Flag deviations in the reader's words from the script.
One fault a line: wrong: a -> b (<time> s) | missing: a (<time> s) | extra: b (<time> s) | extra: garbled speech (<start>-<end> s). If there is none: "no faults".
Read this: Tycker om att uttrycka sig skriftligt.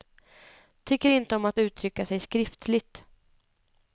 extra: inte (1.1 s)